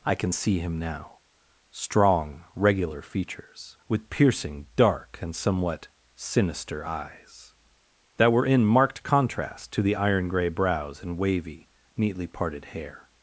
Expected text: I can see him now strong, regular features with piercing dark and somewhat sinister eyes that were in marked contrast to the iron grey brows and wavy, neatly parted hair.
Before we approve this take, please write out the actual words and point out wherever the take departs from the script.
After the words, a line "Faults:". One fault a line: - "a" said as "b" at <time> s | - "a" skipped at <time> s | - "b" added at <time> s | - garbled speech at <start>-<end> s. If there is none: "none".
I can see him now strong, regular features with piercing dark and somewhat sinister eyes that were in marked contrast to the iron grey brows and wavy, neatly parted hair.
Faults:
none